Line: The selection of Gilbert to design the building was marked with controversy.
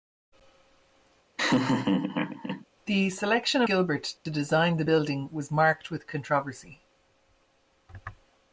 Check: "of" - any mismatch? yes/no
yes